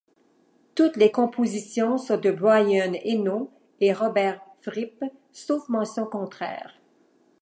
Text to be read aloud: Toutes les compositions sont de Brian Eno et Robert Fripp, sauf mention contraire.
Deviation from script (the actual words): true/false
false